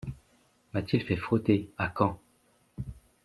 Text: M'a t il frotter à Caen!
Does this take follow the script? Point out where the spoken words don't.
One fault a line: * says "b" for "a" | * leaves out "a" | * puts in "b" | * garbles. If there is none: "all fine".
* puts in "fait"